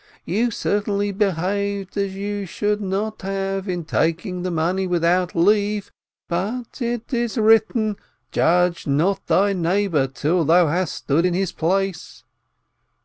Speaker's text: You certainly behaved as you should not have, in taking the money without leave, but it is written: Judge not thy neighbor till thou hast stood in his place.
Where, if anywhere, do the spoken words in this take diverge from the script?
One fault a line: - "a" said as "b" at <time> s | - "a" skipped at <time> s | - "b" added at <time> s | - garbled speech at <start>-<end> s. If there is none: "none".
none